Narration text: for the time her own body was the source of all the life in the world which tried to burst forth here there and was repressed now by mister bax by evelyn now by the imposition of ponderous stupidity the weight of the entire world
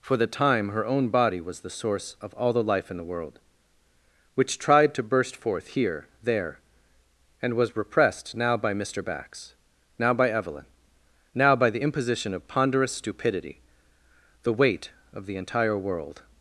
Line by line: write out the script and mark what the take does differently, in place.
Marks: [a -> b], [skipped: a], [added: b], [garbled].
for the time her own body was the source of all the life in the world which tried to burst forth here there and was repressed now by mister bax [added: now] by evelyn now by the imposition of ponderous stupidity the weight of the entire world